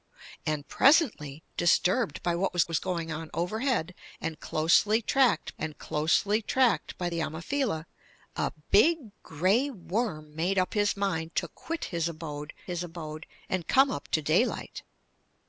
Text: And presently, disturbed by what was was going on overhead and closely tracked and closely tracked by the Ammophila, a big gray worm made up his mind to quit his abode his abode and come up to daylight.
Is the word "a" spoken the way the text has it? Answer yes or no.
yes